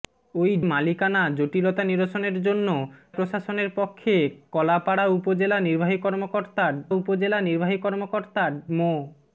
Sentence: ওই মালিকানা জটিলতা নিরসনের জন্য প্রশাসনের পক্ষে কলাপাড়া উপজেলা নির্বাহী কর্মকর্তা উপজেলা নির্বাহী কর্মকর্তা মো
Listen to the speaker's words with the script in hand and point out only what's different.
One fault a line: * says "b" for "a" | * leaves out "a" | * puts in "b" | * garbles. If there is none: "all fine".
all fine